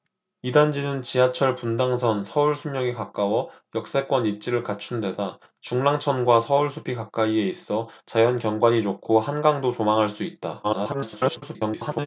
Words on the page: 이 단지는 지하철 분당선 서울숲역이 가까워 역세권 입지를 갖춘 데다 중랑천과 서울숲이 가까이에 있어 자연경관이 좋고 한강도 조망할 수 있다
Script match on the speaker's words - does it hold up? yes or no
no